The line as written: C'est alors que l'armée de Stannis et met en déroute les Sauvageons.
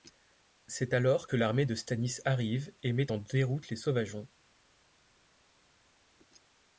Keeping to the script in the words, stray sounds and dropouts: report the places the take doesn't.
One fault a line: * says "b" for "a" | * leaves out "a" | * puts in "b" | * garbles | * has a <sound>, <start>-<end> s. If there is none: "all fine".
* puts in "arrive"